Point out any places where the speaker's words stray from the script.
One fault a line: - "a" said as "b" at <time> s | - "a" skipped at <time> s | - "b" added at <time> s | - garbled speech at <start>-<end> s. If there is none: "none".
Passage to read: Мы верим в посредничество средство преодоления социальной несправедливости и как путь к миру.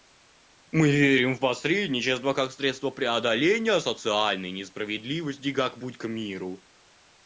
- "как" added at 2.3 s